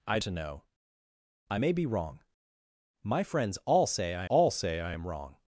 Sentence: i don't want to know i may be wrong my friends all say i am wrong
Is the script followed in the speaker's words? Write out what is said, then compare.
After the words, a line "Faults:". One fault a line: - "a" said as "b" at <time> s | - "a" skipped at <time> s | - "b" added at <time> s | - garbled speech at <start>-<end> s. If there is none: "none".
i to know i may be wrong my friends all say i all say i am wrong
Faults:
- "don't want" skipped at 0.2 s
- "all say i" added at 4.3 s